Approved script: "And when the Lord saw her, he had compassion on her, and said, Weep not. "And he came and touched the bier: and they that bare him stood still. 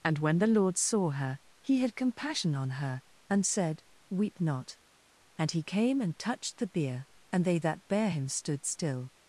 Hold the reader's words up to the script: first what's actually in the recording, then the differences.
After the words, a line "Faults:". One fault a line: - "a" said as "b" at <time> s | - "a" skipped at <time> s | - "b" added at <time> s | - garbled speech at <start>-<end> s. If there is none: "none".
"And when the Lord saw her, he had compassion on her, and said, Weep not. "And he came and touched the bier: and they that bare him stood still.
Faults:
none